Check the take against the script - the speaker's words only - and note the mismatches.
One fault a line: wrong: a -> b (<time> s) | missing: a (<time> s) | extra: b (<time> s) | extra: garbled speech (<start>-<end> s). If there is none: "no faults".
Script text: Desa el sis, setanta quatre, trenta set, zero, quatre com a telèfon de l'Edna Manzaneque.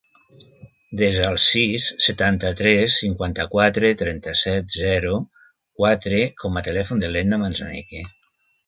extra: tres cinquanta (2.6 s)